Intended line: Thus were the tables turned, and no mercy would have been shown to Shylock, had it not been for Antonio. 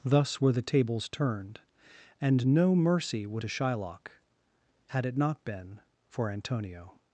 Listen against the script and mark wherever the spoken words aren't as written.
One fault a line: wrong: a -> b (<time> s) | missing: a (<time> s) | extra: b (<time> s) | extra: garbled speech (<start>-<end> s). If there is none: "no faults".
missing: have been shown (3.4 s)